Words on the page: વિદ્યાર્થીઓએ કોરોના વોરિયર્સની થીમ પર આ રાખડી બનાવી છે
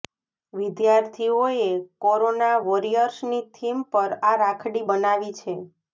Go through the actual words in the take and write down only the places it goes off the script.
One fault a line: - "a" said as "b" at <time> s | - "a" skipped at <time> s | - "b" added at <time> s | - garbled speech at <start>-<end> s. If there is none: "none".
none